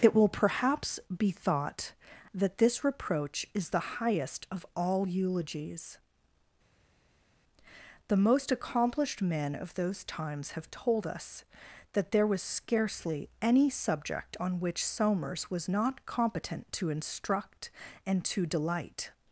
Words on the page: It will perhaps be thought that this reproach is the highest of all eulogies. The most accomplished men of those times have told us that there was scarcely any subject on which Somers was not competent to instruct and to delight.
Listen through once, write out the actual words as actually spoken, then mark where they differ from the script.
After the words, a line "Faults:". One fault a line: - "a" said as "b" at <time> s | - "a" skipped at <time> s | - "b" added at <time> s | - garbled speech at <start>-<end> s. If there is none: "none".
It will perhaps be thought that this reproach is the highest of all eulogies. The most accomplished men of those times have told us that there was scarcely any subject on which Somers was not competent to instruct and to delight.
Faults:
none